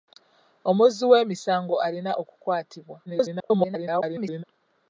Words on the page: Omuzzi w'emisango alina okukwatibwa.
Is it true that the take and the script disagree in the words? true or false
true